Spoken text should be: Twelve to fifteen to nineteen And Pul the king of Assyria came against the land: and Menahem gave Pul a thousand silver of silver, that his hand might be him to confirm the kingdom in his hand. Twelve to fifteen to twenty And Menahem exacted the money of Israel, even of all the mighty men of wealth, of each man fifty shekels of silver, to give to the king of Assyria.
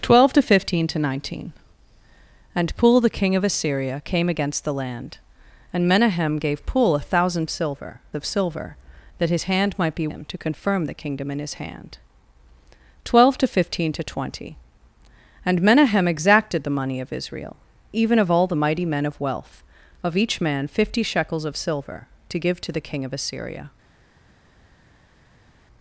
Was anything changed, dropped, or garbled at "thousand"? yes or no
no